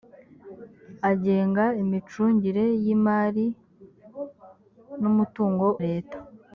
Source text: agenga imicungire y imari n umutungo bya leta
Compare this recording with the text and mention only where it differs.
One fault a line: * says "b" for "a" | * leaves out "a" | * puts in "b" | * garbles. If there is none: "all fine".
* leaves out "bya"